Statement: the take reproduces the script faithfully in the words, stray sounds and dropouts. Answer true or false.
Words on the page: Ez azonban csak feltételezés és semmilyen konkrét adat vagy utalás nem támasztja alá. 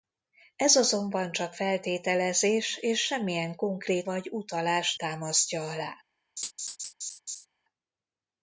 false